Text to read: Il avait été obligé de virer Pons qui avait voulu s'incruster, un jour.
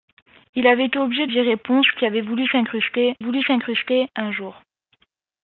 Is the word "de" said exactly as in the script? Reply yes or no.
no